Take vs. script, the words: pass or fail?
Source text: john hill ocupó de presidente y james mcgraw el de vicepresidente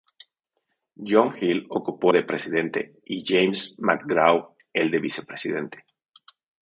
pass